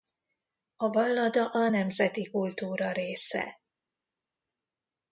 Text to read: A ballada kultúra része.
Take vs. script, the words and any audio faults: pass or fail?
fail